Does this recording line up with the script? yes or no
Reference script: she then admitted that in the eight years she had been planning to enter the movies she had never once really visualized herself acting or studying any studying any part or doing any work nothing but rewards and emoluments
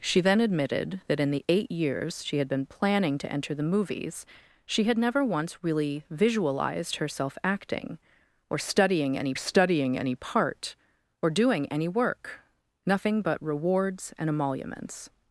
yes